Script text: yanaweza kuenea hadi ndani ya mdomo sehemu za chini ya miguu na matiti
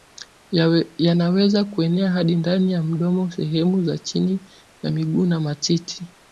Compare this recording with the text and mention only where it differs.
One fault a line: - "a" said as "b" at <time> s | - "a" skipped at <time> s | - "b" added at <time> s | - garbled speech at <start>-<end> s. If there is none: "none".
none